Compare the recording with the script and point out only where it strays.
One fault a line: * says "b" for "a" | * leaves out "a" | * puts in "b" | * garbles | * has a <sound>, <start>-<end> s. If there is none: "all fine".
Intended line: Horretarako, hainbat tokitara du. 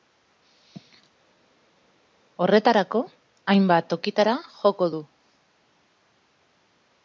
* puts in "joko"